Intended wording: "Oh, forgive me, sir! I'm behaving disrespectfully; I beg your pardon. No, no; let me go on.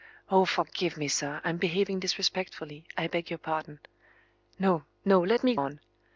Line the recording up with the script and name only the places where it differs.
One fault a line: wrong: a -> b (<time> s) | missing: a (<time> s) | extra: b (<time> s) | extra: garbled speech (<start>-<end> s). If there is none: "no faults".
missing: go (5.5 s)